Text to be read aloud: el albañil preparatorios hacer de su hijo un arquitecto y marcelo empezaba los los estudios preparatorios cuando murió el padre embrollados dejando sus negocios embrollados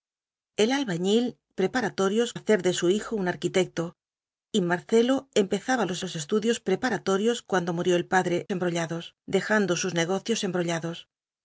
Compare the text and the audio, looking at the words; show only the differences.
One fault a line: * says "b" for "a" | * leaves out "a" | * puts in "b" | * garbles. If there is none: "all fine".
all fine